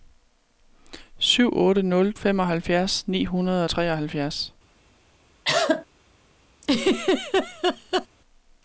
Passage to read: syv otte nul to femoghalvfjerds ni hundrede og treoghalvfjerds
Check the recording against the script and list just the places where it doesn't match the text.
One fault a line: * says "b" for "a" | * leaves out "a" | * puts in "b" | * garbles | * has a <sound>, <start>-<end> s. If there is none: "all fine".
* leaves out "to"
* has a cough, 5.4-5.9 s
* has a laugh, 6.6-8.1 s